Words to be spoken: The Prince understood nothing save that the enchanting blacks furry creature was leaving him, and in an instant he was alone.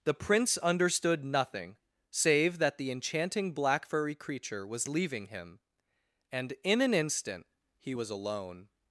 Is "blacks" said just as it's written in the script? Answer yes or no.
no